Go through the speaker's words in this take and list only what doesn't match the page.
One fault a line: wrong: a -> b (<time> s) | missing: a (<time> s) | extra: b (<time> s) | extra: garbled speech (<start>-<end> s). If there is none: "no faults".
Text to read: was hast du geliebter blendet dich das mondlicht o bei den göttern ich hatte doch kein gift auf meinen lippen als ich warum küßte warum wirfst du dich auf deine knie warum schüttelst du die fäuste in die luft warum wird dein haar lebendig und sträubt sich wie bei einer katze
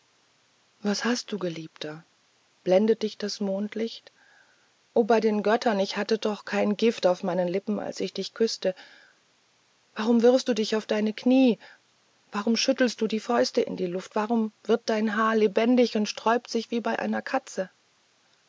wrong: warum -> dich (8.1 s)